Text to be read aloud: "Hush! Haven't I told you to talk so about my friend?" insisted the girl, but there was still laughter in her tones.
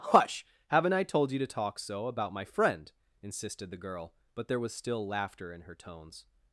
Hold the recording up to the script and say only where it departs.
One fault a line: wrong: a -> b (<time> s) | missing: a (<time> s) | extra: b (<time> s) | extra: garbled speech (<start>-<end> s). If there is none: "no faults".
no faults